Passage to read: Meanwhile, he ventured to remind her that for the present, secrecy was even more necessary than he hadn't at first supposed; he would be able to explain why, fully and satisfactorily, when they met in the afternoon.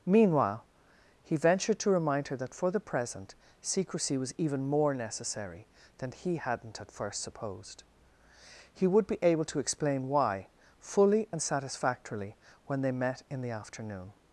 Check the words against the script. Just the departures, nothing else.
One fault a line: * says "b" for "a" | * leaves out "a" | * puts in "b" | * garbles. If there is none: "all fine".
all fine